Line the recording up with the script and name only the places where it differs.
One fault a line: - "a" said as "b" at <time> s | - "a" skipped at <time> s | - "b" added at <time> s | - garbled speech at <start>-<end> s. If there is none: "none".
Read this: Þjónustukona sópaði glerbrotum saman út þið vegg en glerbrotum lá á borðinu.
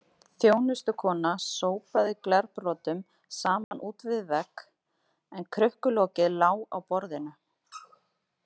- "þið" said as "við" at 4.1 s
- "glerbrotum" said as "krukkulokið" at 5.6 s